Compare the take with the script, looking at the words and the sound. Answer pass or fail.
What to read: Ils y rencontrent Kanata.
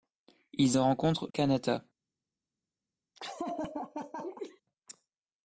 fail